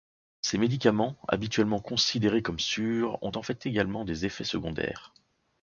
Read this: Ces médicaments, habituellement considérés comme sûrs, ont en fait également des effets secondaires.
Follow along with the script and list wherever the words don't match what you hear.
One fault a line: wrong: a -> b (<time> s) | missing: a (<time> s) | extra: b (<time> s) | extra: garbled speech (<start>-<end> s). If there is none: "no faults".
no faults